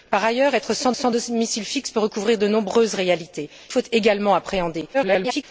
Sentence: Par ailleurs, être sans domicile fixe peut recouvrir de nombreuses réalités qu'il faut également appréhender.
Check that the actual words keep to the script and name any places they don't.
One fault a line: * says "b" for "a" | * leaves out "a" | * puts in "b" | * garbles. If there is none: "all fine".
* puts in "sans"
* leaves out "qu'il"
* garbles